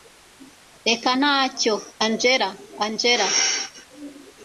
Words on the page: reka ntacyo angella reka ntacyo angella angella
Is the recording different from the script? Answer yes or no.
yes